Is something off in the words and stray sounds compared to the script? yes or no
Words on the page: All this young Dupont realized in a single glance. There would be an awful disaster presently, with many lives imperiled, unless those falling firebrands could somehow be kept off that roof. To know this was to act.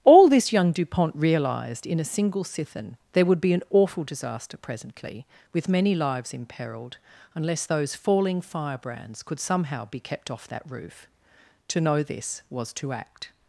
yes